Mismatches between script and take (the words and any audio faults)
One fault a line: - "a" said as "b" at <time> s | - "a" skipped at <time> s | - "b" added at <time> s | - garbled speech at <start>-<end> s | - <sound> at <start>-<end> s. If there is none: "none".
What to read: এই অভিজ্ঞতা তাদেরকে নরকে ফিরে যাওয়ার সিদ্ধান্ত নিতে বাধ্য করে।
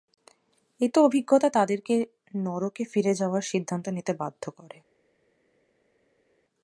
none